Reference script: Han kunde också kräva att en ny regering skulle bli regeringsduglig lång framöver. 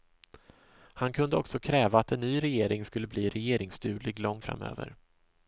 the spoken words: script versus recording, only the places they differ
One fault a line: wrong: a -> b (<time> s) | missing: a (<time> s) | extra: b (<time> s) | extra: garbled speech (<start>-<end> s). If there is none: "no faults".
no faults